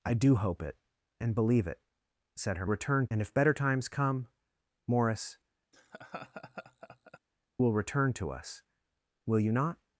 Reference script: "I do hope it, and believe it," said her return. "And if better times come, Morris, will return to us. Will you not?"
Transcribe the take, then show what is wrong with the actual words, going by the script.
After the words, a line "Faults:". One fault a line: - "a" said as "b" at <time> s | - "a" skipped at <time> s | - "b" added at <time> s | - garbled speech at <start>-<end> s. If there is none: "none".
"I do hope it, and believe it," said her return. "And if better times come, Morris, will return to us. Will you not?"
Faults:
none